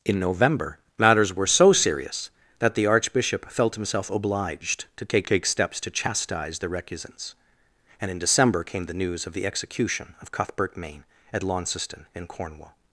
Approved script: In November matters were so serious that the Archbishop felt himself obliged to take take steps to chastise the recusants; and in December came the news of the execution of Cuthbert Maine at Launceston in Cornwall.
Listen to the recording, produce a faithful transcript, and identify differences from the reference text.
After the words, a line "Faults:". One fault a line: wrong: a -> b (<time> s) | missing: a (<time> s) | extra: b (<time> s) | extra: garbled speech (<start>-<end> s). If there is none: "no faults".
In November matters were so serious that the Archbishop felt himself obliged to take take steps to chastise the recusants; and in December came the news of the execution of Cuthbert Maine at Launceston in Cornwall.
Faults:
no faults